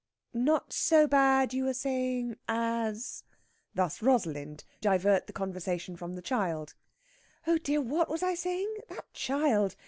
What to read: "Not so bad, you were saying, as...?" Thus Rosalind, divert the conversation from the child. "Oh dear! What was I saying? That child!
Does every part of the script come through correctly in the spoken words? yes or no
yes